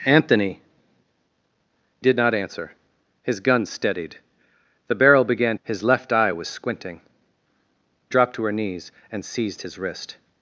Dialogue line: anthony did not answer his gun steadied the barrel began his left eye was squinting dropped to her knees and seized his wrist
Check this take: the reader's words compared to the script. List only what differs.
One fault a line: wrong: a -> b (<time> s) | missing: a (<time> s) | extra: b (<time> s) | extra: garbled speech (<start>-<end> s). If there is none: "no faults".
no faults